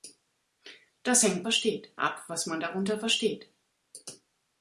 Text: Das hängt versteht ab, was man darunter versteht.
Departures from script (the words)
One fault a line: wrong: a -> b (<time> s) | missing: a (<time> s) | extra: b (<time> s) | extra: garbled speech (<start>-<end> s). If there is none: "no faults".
no faults